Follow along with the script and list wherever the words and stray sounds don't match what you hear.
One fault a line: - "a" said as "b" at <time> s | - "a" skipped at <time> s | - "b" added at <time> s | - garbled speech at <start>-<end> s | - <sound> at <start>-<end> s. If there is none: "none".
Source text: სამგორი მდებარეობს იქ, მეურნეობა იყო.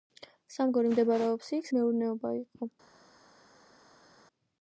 none